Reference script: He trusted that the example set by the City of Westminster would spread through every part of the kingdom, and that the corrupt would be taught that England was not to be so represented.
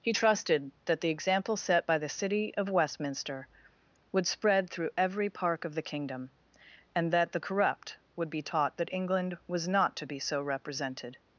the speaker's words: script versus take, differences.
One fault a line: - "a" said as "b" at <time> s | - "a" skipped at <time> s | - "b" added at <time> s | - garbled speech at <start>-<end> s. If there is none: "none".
- "part" said as "park" at 5.3 s